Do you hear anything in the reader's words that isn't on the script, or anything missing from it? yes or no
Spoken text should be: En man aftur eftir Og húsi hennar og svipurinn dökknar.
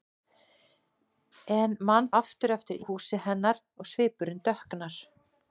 no